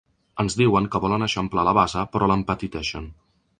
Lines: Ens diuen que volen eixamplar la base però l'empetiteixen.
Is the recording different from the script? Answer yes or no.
no